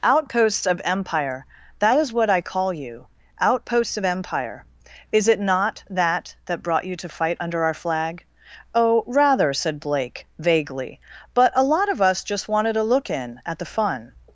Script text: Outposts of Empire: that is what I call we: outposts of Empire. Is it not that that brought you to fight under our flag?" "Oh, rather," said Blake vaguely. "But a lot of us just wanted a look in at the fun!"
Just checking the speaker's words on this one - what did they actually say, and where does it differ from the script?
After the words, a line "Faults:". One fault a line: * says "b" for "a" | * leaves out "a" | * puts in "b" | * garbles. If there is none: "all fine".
Outposts of Empire: that is what I call you: outposts of Empire. Is it not that that brought you to fight under our flag?" "Oh, rather," said Blake vaguely. "But a lot of us just wanted a look in at the fun!"
Faults:
* says "you" for "we"